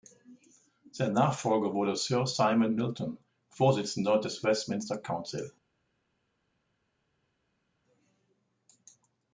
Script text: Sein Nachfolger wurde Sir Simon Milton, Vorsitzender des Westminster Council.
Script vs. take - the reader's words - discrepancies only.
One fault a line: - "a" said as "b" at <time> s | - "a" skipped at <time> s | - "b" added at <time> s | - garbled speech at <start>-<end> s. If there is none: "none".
none